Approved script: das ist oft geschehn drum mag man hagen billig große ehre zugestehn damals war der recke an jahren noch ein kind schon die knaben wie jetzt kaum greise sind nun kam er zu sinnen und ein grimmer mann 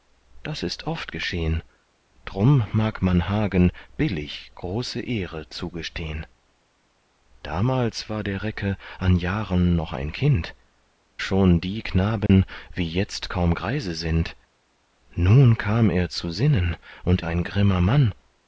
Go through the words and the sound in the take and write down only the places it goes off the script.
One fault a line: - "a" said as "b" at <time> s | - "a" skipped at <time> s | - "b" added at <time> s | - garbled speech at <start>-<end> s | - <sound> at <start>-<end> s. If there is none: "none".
- dropout at 12.3-12.3 s